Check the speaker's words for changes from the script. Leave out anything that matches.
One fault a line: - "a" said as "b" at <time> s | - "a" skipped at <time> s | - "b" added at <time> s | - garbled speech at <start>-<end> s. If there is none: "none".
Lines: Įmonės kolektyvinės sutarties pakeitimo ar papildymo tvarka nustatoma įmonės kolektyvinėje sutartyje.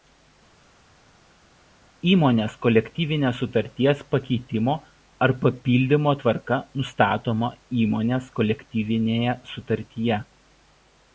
none